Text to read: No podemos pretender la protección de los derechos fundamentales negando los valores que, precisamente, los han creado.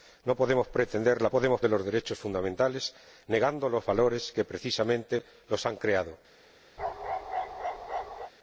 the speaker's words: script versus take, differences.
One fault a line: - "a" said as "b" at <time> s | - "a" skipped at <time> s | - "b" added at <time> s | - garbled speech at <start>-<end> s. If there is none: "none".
- "protección" said as "podemos" at 1.3 s